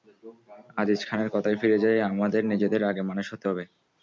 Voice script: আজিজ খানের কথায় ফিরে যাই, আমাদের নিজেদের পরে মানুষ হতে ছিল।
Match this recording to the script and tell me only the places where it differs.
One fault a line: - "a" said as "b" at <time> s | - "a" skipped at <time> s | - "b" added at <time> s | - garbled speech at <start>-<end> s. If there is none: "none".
- "পরে" said as "আগে" at 2.8 s
- "ছিল" said as "হবে" at 3.5 s